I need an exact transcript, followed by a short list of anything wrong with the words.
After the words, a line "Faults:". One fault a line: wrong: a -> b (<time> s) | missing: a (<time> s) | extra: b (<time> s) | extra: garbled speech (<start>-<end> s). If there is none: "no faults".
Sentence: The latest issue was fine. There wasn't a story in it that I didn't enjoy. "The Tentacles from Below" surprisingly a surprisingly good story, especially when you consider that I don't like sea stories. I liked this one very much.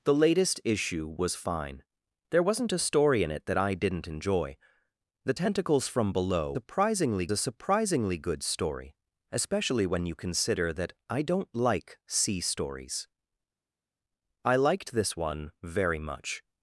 The latest issue was fine. There wasn't a story in it that I didn't enjoy. "The Tentacles from Below" surprisingly a surprisingly good story, especially when you consider that I don't like sea stories. I liked this one very much.
Faults:
no faults